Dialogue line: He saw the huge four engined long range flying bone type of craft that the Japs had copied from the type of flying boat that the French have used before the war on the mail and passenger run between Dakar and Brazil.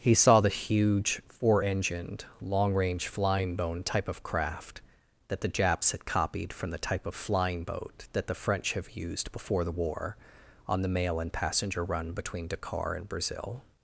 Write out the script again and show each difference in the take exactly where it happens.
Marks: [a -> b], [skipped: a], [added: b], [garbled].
He saw the huge four engined long range flying bone type of craft that the Japs had copied from the type of flying boat that the French have used before the war on the mail and passenger run between Dakar and Brazil.